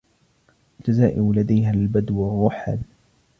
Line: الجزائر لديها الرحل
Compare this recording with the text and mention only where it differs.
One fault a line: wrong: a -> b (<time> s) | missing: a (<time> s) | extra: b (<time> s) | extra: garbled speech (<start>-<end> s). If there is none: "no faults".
extra: البدو (1.7 s)